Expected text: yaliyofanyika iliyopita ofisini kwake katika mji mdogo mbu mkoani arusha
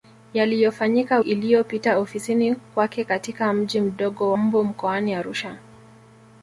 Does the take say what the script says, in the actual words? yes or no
yes